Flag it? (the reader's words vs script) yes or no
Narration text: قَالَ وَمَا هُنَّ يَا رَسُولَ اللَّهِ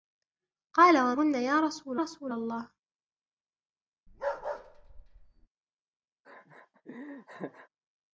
yes